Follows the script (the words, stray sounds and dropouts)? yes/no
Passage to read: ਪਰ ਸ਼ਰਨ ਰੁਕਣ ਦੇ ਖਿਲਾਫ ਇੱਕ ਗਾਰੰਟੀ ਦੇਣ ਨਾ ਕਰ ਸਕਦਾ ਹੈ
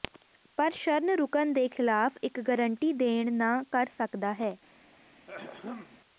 no